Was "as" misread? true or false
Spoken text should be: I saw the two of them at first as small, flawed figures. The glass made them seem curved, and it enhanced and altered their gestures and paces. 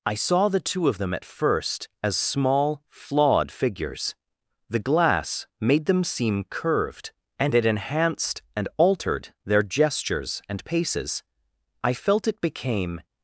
false